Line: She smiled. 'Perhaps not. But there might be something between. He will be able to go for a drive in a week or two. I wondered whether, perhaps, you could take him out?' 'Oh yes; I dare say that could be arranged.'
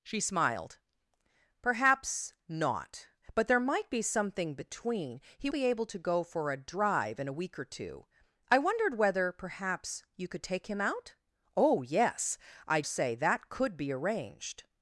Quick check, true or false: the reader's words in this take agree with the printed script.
false